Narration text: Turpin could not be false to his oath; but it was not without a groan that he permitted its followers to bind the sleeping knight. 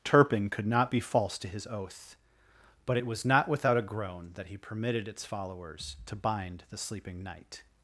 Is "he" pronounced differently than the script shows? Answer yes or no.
no